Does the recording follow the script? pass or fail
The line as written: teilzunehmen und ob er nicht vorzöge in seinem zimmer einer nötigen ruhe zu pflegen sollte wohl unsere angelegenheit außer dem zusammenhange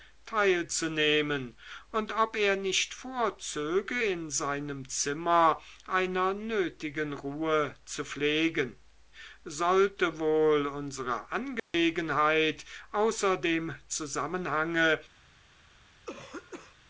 pass